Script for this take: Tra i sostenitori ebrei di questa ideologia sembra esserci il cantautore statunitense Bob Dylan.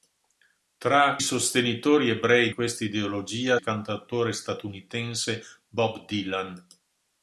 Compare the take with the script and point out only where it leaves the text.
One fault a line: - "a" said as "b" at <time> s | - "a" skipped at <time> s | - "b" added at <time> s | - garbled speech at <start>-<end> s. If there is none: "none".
- "i" skipped at 1.2 s
- "di" skipped at 2.5 s
- "sembra esserci" skipped at 3.6 s